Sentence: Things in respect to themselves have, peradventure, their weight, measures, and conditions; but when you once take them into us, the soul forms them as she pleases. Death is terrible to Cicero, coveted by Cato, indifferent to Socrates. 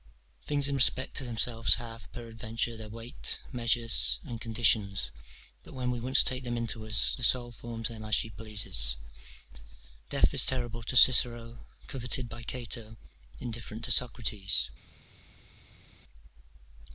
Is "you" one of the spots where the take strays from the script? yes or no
yes